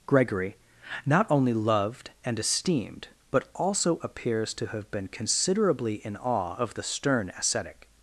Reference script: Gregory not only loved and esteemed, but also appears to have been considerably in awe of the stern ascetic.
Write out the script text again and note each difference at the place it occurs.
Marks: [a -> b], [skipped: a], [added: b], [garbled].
Gregory not only loved and esteemed, but also appears to have been considerably in awe of the stern ascetic.